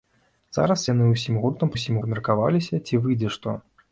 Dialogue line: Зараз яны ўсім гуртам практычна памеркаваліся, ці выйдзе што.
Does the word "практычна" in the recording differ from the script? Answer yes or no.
yes